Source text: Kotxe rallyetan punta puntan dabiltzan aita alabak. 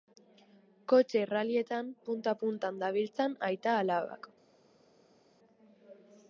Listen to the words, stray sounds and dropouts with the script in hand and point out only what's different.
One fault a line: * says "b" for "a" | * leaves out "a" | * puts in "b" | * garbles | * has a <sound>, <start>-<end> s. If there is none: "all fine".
all fine